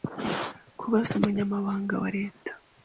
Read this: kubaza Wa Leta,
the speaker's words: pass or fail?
fail